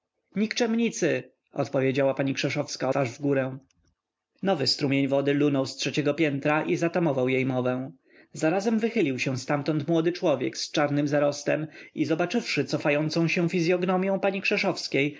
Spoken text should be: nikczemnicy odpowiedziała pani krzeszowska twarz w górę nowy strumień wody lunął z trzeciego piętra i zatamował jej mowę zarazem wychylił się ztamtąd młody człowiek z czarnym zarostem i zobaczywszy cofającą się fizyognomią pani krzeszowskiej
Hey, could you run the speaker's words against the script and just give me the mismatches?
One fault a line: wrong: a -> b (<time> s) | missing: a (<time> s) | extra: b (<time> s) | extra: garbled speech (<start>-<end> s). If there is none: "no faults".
no faults